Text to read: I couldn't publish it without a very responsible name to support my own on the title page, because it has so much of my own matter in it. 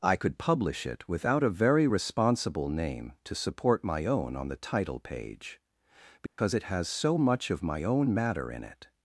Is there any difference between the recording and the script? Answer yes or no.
yes